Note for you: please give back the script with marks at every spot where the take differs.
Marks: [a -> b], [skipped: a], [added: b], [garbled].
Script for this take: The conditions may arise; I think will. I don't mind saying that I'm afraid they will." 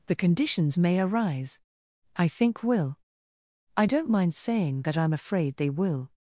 The conditions may arise; I think will. I don't mind saying that I'm afraid they will."